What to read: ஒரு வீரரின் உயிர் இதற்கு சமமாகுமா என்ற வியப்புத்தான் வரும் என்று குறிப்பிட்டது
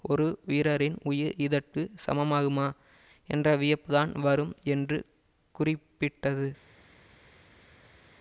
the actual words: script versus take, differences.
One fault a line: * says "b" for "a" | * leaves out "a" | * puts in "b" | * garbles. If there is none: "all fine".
all fine